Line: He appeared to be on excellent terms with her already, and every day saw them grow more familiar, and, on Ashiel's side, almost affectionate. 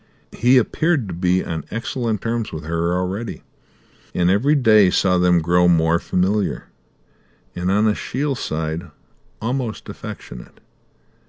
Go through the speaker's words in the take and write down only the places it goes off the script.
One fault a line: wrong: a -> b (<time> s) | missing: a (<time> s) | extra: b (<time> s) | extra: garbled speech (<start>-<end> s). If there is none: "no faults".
no faults